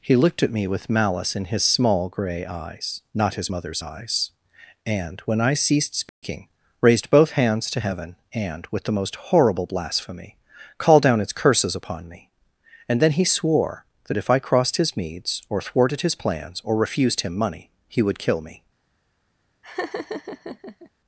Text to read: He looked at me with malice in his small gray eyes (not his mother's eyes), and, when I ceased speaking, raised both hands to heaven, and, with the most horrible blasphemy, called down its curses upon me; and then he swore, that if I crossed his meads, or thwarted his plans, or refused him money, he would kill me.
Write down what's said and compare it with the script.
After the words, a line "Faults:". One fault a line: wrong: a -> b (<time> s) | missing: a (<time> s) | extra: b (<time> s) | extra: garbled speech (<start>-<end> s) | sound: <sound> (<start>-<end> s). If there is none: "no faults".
He looked at me with malice in his small gray eyes (not his mother's eyes), and, when I ceased speaking, raised both hands to heaven, and, with the most horrible blasphemy, called down its curses upon me; and then he swore, that if I crossed his meads, or thwarted his plans, or refused him money, he would kill me.
Faults:
sound: dropout (6.1-6.2 s)
sound: laugh (19.6-20.9 s)